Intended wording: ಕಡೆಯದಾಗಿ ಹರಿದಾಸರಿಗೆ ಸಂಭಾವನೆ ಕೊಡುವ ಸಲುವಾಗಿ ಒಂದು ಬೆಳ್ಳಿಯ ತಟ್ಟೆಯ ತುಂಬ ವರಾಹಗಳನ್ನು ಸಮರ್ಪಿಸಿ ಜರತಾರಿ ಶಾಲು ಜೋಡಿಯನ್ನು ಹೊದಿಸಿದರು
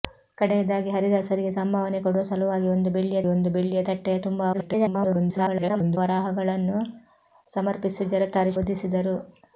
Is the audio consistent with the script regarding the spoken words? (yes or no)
no